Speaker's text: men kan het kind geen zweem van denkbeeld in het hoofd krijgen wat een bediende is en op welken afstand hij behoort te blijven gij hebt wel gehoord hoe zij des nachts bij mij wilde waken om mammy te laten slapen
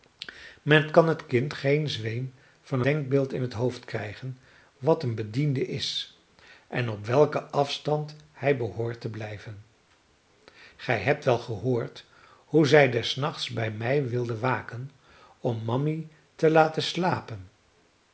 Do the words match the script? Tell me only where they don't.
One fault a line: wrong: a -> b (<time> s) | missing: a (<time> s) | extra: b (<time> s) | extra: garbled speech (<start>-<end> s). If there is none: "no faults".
no faults